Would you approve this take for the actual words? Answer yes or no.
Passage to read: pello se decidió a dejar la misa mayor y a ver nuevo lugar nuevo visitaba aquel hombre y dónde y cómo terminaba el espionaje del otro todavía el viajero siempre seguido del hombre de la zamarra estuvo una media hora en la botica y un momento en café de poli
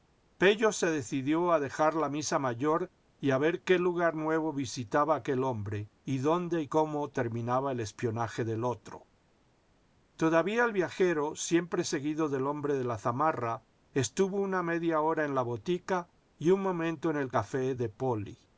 no